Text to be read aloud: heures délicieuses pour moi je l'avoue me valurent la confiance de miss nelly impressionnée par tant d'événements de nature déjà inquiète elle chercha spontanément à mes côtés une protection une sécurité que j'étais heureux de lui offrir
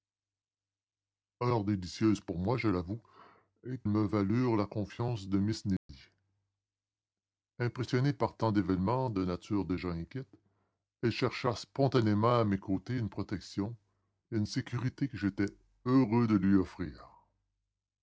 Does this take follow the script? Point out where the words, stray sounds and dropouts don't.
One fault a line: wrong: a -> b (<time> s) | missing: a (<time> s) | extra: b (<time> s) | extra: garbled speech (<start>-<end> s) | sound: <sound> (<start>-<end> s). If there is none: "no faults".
sound: dropout (5.8-5.9 s)